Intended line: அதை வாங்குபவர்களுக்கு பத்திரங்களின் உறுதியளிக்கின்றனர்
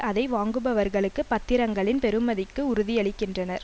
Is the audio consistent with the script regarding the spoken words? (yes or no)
no